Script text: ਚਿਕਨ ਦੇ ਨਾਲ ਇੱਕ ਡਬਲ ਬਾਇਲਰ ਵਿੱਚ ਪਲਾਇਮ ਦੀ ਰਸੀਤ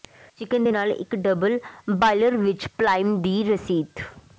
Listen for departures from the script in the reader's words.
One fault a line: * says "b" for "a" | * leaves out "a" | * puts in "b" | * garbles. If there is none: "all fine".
all fine